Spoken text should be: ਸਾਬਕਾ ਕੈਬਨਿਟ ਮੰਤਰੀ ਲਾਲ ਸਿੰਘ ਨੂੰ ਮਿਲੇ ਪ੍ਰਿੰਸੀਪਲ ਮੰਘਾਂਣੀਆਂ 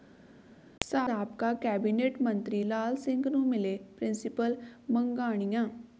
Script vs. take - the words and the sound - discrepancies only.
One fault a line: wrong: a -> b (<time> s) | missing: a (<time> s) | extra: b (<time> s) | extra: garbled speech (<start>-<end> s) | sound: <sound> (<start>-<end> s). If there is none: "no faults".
no faults